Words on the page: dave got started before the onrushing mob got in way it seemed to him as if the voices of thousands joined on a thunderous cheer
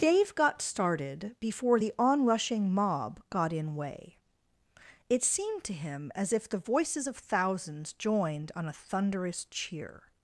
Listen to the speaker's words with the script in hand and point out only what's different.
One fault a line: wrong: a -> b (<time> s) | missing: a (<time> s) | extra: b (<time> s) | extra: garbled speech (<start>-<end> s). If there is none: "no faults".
no faults